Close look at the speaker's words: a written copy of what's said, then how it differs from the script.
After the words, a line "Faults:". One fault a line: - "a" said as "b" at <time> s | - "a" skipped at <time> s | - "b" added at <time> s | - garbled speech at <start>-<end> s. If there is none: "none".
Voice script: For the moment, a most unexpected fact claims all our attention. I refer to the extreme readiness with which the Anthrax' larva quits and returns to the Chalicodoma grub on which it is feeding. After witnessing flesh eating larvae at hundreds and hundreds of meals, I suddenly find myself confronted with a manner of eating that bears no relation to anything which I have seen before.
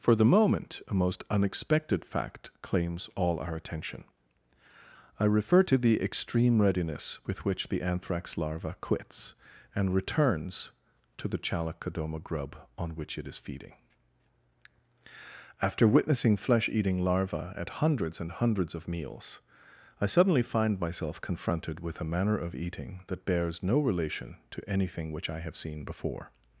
For the moment, a most unexpected fact claims all our attention. I refer to the extreme readiness with which the Anthrax' larva quits and returns to the Chalicodoma grub on which it is feeding. After witnessing flesh eating larvae at hundreds and hundreds of meals, I suddenly find myself confronted with a manner of eating that bears no relation to anything which I have seen before.
Faults:
none